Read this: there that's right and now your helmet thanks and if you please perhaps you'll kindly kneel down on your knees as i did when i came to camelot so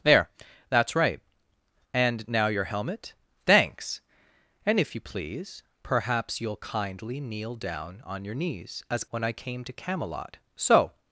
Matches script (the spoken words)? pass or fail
fail